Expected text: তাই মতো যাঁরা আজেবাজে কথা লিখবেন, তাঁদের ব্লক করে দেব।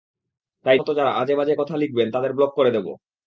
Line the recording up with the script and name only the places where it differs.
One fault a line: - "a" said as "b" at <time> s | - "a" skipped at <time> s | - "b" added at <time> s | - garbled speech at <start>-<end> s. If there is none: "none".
none